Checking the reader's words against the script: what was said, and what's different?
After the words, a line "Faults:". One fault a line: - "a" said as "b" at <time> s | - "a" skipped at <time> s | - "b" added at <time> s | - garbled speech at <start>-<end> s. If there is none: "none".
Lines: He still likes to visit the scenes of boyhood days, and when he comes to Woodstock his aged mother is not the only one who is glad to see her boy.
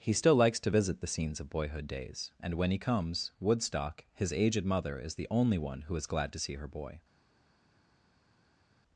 He still likes to visit the scenes of boyhood days, and when he comes Woodstock his aged mother is the only one who is glad to see her boy.
Faults:
- "to" skipped at 3.3 s
- "not" skipped at 5.1 s